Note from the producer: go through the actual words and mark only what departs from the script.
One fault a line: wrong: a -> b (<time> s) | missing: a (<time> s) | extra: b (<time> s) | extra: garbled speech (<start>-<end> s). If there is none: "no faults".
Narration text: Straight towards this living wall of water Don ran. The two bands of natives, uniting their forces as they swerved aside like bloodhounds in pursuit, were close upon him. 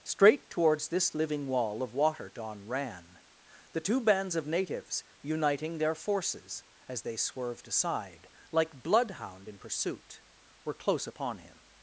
wrong: bloodhounds -> bloodhound (8.8 s)